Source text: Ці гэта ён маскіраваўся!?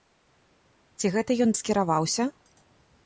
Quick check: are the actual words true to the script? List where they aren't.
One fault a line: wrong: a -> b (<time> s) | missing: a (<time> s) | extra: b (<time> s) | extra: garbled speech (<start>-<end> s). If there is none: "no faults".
no faults